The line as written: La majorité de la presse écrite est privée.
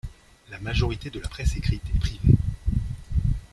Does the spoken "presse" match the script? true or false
true